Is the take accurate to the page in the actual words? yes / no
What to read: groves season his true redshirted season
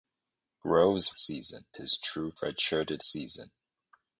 yes